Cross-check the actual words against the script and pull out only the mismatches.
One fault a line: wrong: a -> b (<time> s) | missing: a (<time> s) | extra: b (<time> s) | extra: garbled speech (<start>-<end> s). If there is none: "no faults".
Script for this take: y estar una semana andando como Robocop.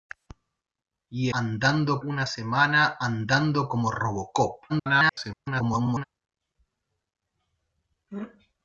wrong: estar -> andando (1.3 s)
extra: garbled speech (4.7-6.0 s)